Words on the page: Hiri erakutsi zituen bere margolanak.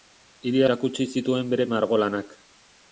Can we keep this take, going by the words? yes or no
yes